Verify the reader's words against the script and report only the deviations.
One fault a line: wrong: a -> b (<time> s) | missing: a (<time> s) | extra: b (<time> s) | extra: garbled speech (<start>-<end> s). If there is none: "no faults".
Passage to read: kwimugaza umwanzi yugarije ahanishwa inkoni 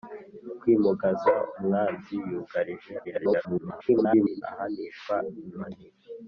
extra: garbled speech (3.0-4.4 s)